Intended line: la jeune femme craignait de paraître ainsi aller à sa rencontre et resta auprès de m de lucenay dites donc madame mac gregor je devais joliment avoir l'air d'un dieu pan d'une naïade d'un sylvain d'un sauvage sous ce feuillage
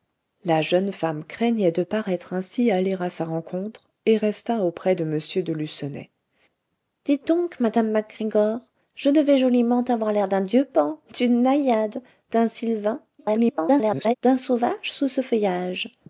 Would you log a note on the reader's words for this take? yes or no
yes